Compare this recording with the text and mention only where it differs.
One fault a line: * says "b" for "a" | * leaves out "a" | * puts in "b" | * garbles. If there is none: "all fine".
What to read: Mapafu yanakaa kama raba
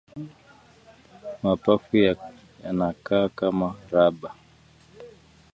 all fine